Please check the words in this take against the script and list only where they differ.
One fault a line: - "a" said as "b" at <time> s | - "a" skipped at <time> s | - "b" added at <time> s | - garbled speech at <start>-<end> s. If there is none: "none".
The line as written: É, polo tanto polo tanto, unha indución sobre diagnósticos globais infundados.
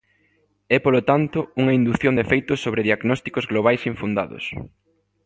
- "polo tanto unha indución" said as "unha indución de feitos" at 1.6 s